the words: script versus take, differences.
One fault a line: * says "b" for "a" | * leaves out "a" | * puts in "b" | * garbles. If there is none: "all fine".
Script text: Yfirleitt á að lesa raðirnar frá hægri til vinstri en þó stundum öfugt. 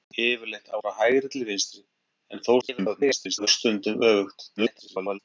* leaves out "að lesa raðirnar"
* garbles
* garbles